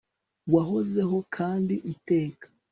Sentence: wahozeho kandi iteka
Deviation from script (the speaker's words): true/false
false